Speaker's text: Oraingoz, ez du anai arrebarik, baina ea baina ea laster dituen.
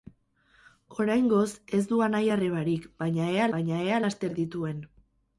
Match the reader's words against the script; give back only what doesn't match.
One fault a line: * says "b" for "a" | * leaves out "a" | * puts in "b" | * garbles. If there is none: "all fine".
all fine